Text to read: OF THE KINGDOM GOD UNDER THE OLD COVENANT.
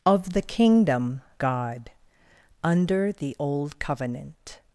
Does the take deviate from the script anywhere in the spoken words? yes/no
no